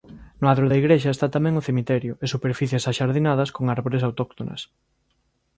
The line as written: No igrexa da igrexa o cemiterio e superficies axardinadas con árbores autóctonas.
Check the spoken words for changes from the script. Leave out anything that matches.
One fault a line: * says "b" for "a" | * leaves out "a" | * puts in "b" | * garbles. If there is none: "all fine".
* says "adro" for "igrexa"
* puts in "está tamén"